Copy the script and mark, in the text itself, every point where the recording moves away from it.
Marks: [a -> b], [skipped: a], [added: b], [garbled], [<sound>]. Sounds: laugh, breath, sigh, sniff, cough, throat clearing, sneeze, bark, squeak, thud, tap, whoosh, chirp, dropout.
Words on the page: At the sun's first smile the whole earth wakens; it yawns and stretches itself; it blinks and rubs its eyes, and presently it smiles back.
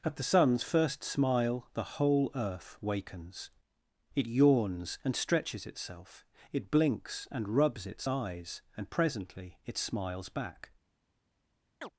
At the sun's first smile the whole earth wakens; it yawns and stretches itself; it blinks and rubs its eyes, and presently it smiles back. [chirp]